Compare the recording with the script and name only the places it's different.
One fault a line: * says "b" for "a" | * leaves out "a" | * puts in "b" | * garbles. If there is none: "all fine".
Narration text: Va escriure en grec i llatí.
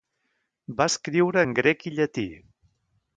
all fine